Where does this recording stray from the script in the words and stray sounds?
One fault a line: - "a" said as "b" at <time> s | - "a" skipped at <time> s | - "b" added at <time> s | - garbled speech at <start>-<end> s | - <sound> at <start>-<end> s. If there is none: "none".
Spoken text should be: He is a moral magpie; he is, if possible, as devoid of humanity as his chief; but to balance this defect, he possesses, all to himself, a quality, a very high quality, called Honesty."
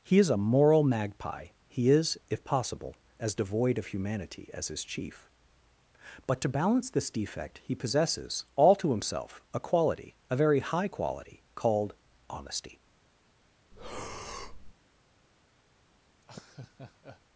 - breath at 13.7-14.7 s
- laugh at 16.2-17.2 s